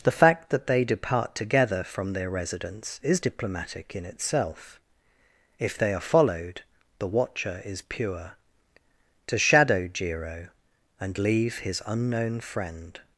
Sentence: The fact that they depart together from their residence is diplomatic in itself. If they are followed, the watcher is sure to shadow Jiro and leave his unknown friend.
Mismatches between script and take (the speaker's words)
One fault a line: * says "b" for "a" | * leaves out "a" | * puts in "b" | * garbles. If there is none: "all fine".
* says "pure" for "sure"